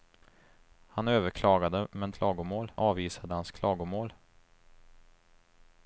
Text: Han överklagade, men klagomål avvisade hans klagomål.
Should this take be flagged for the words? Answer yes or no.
no